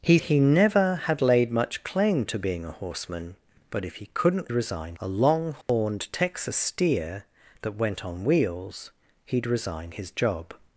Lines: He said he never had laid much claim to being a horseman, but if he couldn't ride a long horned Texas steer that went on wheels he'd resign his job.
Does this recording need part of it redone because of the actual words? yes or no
yes